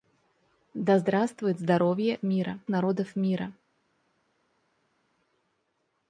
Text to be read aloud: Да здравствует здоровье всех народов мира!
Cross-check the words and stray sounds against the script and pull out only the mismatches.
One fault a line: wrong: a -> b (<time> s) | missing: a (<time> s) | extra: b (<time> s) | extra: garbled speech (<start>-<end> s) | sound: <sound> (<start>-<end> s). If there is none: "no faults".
wrong: всех -> мира (2.2 s)